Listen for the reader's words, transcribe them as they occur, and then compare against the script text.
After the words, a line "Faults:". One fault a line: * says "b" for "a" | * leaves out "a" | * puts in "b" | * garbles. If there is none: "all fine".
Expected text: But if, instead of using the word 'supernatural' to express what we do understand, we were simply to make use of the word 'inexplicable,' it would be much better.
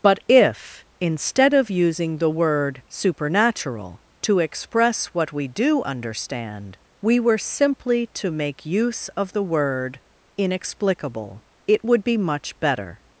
But if, instead of using the word 'supernatural' to express what we do understand, we were simply to make use of the word 'inexplicable,' it would be much better.
Faults:
all fine